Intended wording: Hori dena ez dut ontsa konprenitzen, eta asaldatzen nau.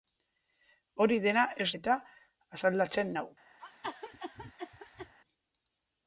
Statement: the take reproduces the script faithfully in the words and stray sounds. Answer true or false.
false